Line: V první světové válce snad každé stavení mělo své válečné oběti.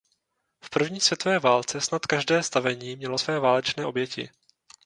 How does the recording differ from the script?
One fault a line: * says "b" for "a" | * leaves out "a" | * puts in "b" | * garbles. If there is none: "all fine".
all fine